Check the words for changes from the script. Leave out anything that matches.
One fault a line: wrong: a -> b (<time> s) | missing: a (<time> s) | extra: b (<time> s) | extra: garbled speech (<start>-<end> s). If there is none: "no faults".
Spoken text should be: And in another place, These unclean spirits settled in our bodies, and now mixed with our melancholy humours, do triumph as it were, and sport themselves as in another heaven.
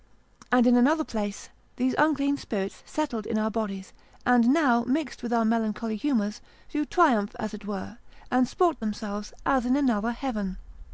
no faults